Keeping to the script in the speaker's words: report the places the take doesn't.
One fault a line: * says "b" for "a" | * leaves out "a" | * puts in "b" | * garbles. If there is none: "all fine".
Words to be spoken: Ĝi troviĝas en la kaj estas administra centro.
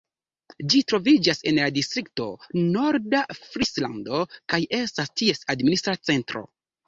* puts in "distrikto Norda Frislando"
* puts in "ties"